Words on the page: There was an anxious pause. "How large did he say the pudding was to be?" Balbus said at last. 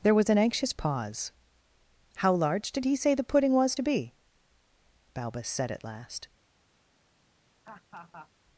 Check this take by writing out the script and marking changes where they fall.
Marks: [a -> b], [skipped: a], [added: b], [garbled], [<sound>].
There was an anxious pause. "How large did he say the pudding was to be?" Balbus said at last. [laugh]